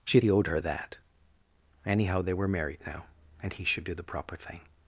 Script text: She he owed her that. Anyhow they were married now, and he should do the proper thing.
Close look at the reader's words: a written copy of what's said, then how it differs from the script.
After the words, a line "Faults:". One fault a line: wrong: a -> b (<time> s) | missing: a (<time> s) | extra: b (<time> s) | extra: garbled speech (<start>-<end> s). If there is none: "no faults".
She he owed her that. Anyhow they were married now, and he should do the proper thing.
Faults:
no faults